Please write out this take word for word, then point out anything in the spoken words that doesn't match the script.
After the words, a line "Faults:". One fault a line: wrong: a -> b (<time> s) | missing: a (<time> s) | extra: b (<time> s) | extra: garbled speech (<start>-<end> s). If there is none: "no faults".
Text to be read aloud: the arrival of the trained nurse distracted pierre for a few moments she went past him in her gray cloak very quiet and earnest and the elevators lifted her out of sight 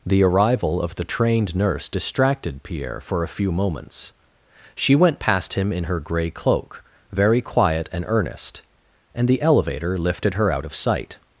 the arrival of the trained nurse distracted pierre for a few moments she went past him in her gray cloak very quiet and earnest and the elevator lifted her out of sight
Faults:
wrong: elevators -> elevator (9.4 s)